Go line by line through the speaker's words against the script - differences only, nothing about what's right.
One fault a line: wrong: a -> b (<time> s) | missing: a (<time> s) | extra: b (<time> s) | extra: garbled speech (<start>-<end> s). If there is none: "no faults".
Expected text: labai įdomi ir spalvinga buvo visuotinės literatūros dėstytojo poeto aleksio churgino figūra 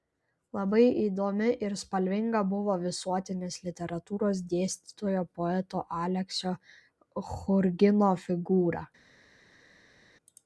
no faults